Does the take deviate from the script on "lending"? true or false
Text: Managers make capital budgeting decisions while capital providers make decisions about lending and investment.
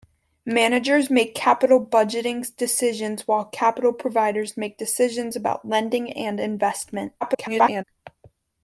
false